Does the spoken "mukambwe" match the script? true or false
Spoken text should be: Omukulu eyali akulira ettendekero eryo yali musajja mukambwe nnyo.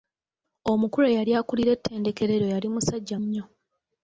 false